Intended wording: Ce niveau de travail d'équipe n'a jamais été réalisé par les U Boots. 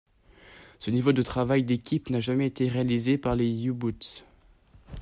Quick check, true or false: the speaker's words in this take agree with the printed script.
true